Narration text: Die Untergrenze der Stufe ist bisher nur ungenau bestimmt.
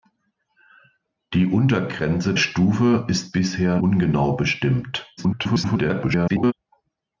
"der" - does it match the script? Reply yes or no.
no